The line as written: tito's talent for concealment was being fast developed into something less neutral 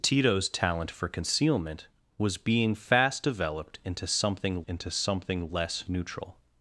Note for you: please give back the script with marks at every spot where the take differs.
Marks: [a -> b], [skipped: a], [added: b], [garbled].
tito's talent for concealment was being fast developed into something [added: into something] less neutral